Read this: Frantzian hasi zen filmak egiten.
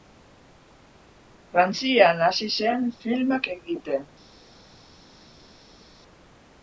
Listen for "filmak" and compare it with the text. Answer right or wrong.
right